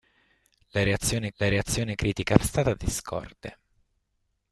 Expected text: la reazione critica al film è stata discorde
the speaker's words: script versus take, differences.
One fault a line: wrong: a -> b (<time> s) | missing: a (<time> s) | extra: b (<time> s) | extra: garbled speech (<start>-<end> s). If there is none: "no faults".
extra: la reazione (1.3 s)
missing: film è (2.4 s)